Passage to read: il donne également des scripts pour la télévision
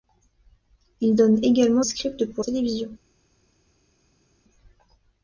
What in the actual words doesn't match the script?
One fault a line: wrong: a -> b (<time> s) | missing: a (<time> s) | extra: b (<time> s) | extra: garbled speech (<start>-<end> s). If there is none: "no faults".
missing: des (1.8 s)
missing: la (2.4 s)